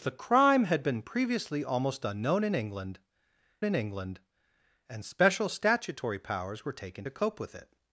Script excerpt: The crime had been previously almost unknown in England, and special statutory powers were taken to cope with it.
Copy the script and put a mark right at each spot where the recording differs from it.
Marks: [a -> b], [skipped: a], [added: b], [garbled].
The crime had been previously almost unknown in England, [added: in England] and special statutory powers were taken to cope with it.